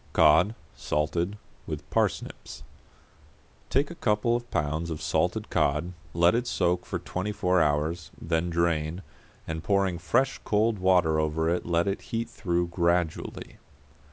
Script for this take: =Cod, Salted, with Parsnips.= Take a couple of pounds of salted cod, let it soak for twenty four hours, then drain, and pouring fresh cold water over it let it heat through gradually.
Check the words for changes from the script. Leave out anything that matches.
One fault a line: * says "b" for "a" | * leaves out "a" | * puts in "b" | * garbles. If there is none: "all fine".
all fine